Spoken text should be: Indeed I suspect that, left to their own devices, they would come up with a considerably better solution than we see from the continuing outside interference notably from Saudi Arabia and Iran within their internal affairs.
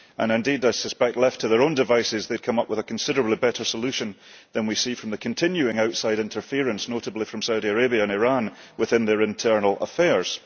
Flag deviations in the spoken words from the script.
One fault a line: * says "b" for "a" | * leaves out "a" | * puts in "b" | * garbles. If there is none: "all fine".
all fine